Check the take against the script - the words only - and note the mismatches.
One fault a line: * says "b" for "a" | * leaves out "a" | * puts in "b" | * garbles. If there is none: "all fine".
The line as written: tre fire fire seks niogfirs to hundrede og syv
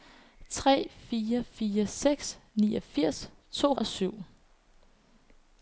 * leaves out "hundrede"